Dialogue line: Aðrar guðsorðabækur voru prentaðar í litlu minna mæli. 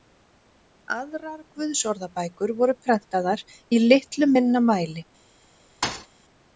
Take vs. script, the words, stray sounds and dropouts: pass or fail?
fail